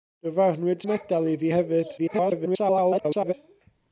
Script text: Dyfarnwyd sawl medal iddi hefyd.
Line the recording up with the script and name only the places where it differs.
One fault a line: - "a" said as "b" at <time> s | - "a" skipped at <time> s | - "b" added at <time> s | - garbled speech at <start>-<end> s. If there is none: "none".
- "sawl" skipped at 0.8 s
- garbled speech at 2.0-3.3 s